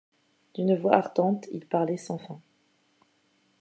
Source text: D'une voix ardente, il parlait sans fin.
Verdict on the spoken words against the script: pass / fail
pass